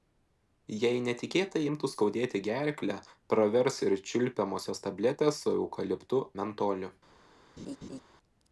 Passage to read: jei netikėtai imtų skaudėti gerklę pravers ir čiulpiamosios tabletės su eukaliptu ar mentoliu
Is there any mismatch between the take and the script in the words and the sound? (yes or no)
yes